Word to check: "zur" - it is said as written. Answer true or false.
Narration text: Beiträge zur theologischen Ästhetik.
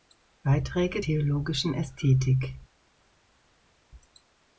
false